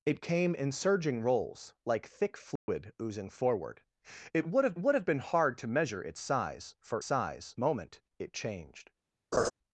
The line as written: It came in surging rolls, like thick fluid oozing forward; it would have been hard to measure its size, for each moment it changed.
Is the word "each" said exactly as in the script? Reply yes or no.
no